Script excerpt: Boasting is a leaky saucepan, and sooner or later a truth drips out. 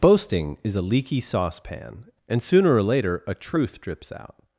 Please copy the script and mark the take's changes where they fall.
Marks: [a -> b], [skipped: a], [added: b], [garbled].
Boasting is a leaky saucepan, and sooner or later a truth drips out.